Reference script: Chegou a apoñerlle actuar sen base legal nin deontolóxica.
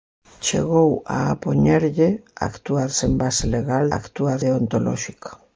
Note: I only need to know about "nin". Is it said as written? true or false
false